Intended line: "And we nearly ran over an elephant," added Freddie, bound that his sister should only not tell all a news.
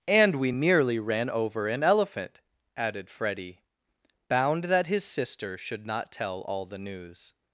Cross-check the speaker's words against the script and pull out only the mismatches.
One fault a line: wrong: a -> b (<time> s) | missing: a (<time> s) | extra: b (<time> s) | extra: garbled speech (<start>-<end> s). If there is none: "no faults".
missing: only (5.9 s)
wrong: a -> the (6.7 s)